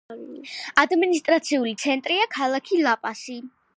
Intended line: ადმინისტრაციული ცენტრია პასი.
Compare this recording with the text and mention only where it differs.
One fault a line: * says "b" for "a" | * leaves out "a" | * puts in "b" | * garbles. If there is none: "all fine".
* puts in "ქალაქი ლა"